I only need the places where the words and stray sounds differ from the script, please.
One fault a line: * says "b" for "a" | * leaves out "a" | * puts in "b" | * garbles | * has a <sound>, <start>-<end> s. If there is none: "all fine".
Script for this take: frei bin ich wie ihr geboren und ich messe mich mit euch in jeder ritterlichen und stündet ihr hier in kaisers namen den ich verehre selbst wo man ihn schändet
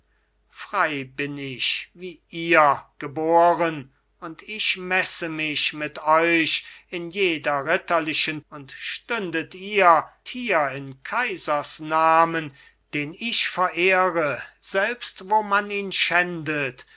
all fine